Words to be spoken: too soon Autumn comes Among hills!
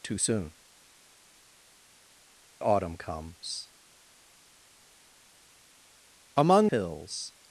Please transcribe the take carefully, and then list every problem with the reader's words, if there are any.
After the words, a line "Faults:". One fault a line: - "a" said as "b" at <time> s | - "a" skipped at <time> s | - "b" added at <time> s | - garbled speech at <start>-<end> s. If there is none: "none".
too soon Autumn comes Among hills!
Faults:
none